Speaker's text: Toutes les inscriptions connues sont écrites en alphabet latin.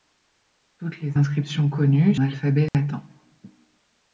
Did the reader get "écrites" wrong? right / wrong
wrong